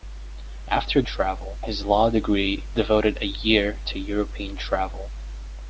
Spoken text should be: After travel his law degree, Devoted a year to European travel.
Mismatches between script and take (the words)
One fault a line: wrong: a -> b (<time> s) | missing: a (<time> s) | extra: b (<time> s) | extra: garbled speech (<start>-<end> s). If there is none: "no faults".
no faults